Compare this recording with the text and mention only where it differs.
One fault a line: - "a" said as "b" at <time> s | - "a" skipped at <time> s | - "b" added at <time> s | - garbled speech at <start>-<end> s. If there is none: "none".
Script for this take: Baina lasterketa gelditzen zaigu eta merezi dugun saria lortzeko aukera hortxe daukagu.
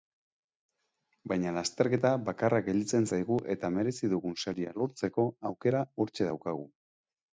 - "bakarra" added at 2.3 s